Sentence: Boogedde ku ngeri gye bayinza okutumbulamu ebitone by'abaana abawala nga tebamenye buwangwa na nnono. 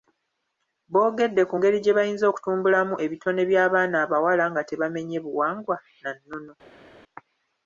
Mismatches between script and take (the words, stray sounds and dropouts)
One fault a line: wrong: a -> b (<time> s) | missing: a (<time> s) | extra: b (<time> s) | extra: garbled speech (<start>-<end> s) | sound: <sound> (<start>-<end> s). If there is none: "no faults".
no faults